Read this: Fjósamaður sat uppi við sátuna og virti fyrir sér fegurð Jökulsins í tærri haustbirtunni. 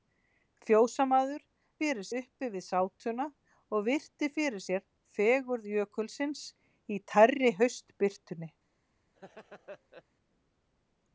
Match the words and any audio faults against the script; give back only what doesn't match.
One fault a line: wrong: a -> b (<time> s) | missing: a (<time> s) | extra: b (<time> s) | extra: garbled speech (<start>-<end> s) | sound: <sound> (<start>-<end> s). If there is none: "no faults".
wrong: sat -> fyrir (1.8 s)
sound: laugh (9.2-10.0 s)